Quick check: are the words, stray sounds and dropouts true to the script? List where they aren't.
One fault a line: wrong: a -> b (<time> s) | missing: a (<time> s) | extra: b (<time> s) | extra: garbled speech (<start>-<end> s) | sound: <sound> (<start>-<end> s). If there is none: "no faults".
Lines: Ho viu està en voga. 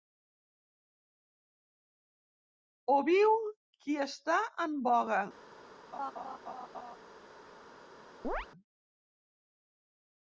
extra: qui (3.9 s)
sound: laugh (5.9-7.0 s)
sound: chirp (8.2-8.5 s)